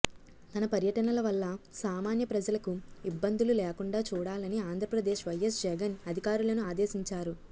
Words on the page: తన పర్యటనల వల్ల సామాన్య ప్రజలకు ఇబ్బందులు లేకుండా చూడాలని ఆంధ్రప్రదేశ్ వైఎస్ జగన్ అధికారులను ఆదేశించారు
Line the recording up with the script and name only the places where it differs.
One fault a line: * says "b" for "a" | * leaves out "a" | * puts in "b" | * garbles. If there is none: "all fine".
all fine